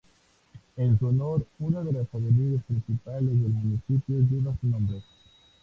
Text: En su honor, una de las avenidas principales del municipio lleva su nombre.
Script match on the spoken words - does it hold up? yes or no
yes